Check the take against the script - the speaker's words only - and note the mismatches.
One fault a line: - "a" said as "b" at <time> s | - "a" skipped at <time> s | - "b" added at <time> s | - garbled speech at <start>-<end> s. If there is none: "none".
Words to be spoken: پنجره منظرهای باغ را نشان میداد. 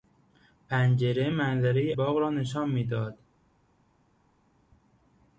none